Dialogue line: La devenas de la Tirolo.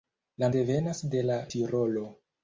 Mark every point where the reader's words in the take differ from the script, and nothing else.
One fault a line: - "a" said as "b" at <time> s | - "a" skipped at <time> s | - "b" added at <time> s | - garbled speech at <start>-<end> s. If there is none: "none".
none